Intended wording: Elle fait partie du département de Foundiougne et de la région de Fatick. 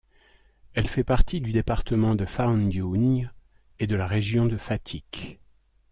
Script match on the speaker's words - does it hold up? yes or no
yes